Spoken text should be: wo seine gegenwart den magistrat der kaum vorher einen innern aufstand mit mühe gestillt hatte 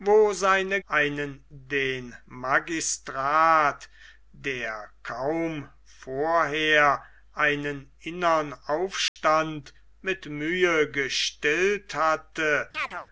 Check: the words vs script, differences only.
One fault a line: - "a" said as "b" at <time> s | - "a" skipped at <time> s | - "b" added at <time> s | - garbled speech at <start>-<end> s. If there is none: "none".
- "gegenwart" said as "einen" at 0.9 s